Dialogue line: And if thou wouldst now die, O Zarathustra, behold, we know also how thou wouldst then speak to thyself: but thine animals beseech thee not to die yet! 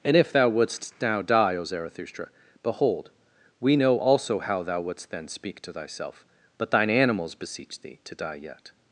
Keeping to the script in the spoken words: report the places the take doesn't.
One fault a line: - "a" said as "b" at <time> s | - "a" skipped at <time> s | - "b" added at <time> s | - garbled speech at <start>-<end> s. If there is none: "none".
- "not" skipped at 8.0 s